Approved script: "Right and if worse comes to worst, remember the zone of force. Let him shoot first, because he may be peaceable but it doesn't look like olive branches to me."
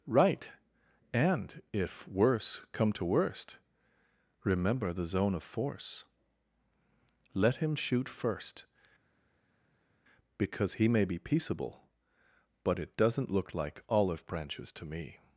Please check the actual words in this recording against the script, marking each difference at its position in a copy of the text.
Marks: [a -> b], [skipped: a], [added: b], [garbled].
"Right and if worse [comes -> come] to worst, remember the zone of force. Let him shoot first, because he may be peaceable but it doesn't look like olive branches to me."